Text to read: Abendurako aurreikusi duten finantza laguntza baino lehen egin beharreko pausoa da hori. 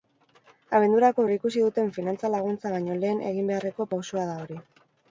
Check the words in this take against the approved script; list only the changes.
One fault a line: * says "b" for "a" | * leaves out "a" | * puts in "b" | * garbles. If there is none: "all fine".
all fine